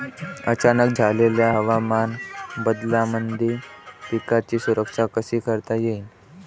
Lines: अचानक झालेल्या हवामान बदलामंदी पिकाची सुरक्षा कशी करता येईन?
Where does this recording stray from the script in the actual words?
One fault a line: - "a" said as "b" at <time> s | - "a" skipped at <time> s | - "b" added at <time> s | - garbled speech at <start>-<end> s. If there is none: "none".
none